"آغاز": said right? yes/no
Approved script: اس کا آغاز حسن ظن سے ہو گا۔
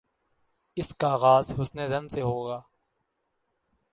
yes